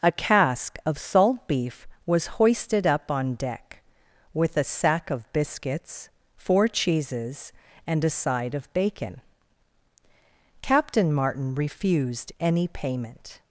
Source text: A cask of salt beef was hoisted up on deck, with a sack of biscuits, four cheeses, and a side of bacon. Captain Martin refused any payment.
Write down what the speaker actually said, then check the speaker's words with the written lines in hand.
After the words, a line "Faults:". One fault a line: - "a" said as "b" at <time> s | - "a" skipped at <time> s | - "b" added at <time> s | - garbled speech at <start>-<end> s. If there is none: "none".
A cask of salt beef was hoisted up on deck, with a sack of biscuits, four cheeses, and a side of bacon. Captain Martin refused any payment.
Faults:
none